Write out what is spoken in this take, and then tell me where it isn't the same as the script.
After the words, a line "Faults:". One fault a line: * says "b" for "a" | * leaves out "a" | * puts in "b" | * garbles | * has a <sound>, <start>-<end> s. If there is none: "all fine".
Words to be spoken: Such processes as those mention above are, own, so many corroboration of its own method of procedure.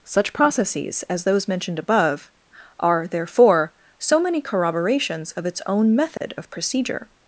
Such processes as those mentioned above are, therefore, so many corroborations of its own method of procedure.
Faults:
* says "mentioned" for "mention"
* says "therefore" for "own"
* says "corroborations" for "corroboration"
* has a dropout, 6.2-6.2 s